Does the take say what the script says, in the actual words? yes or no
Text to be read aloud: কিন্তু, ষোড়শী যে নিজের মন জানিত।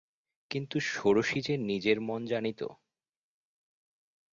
yes